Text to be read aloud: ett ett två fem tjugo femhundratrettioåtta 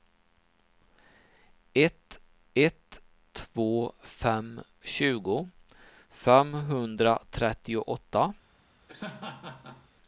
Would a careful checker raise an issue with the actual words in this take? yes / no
no